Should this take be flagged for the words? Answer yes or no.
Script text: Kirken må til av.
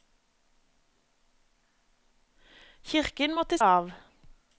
no